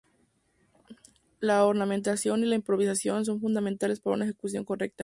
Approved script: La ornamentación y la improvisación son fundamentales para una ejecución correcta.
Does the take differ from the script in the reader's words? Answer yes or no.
no